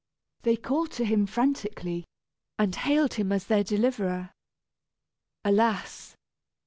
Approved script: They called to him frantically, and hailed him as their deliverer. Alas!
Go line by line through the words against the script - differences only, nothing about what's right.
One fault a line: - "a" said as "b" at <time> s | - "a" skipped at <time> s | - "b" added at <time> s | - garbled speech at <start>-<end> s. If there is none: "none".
none